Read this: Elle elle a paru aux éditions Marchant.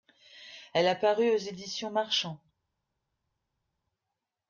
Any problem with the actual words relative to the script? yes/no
yes